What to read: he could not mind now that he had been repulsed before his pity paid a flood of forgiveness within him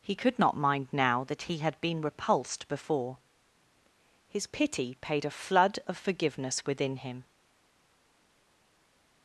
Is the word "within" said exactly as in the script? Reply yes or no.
yes